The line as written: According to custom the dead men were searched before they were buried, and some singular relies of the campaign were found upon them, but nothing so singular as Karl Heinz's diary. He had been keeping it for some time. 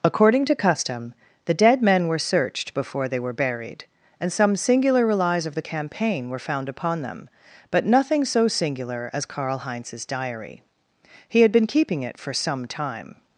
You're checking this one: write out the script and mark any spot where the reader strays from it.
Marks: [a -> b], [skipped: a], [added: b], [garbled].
According to custom the dead men were searched before they were buried, and some singular relies of the campaign were found upon them, but nothing so singular as Karl Heinz's diary. He had been keeping it for some time.